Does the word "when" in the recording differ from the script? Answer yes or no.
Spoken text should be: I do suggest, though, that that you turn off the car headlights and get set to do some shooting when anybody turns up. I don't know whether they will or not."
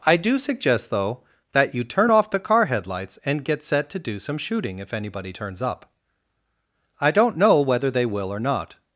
yes